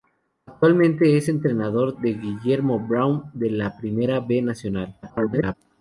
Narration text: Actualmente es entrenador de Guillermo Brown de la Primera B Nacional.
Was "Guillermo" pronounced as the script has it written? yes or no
yes